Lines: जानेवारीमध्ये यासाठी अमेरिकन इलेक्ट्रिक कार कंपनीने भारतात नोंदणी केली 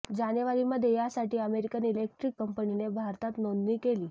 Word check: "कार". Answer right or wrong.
wrong